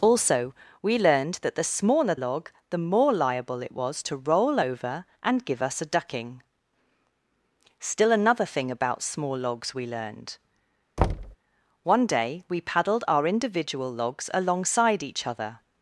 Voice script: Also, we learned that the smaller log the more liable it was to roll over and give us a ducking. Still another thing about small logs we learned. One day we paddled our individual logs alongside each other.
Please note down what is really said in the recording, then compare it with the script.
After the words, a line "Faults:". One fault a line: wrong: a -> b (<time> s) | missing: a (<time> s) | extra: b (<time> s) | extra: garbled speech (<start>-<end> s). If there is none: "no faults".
Also, we learned that the smaller log the more liable it was to roll over and give us a ducking. Still another thing about small logs we learned. One day we paddled our individual logs alongside each other.
Faults:
no faults